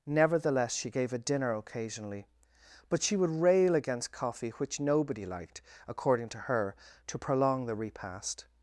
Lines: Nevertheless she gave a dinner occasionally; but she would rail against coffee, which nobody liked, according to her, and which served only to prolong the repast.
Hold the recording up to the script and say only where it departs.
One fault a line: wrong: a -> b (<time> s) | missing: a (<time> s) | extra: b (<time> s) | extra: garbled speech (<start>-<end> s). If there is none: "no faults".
missing: and which served only (6.8 s)